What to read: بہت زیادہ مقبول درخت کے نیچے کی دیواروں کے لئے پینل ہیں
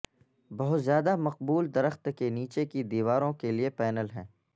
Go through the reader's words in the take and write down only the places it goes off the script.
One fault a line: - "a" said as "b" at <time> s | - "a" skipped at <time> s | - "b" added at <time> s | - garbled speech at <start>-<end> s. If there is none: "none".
none